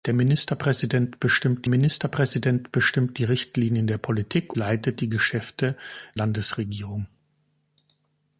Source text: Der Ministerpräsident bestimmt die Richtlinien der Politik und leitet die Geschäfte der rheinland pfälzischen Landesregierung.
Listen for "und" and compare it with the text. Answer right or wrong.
wrong